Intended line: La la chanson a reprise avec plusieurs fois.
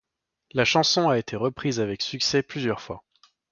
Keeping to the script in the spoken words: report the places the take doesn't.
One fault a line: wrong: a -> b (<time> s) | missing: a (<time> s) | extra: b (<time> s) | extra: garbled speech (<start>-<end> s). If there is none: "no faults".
missing: la (0.7 s)
extra: été (1.2 s)
extra: succès (2.0 s)